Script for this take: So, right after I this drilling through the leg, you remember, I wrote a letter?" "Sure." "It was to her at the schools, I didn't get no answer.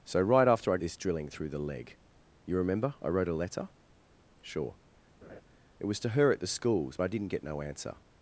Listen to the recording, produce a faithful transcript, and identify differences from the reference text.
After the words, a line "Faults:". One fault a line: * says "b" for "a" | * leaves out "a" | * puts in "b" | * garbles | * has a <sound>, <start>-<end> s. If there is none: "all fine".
So, right after I this drilling through the leg, you remember, I wrote a letter?" "Sure." "It was to her at the schools, I didn't get no answer.
Faults:
* has a laugh, 5.2-5.4 s